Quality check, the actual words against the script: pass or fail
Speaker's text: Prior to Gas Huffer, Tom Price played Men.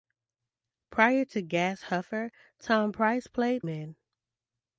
pass